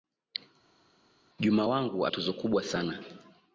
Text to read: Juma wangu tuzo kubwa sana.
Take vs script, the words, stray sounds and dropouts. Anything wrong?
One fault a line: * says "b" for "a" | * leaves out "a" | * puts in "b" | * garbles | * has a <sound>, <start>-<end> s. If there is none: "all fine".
all fine